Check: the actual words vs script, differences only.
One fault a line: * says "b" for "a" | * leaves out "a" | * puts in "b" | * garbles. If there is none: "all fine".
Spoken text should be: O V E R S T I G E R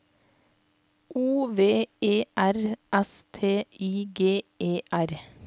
all fine